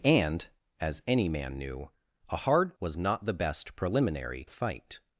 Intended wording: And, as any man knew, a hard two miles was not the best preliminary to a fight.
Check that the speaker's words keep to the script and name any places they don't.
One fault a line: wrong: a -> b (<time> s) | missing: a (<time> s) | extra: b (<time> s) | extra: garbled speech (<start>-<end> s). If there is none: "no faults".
missing: two miles (2.8 s)
missing: to (4.4 s)